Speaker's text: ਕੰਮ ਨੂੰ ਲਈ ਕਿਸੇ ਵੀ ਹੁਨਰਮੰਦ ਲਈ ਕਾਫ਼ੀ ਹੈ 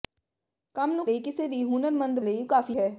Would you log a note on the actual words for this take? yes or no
no